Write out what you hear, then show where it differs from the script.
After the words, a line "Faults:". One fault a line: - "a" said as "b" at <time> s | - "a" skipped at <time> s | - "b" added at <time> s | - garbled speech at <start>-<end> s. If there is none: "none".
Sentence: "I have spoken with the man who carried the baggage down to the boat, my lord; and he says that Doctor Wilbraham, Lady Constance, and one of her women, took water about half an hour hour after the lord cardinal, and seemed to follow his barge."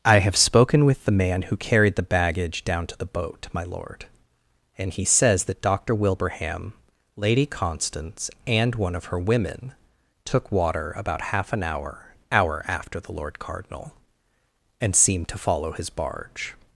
"I have spoken with the man who carried the baggage down to the boat, my lord; and he says that Doctor Wilbraham, Lady Constance, and one of her women, took water about half an hour hour after the lord cardinal, and seemed to follow his barge."
Faults:
none